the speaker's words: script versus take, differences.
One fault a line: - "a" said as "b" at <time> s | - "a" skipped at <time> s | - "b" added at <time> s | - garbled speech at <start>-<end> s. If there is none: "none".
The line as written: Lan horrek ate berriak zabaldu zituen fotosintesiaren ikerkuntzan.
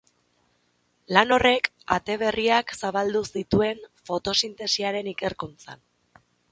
none